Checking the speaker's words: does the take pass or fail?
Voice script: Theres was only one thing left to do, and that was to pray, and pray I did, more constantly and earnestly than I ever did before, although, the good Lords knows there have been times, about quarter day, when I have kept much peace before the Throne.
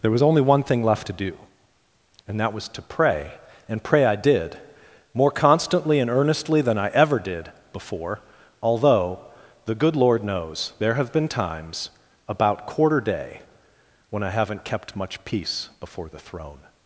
fail